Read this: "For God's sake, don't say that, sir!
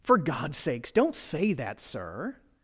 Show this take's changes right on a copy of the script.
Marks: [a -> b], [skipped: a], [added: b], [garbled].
"For God's [sake, -> sakes] don't say that, sir!